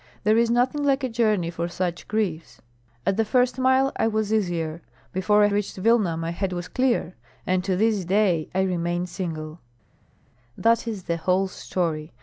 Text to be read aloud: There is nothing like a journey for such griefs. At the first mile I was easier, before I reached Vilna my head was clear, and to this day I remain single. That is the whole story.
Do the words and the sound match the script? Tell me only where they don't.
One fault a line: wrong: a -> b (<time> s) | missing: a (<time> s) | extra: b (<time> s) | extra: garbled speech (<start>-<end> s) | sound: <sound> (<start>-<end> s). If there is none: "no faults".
no faults